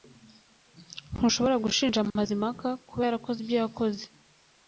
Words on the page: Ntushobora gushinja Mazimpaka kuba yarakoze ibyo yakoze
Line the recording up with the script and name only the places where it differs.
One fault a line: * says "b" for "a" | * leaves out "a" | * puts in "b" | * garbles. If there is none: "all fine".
all fine